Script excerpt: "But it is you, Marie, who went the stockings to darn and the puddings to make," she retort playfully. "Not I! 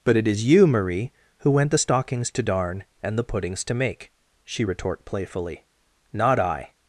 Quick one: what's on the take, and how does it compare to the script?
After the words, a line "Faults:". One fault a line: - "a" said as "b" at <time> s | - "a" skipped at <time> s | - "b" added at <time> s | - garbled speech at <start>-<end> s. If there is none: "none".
"But it is you, Marie, who went the stockings to darn and the puddings to make," she retort playfully. "Not I!
Faults:
none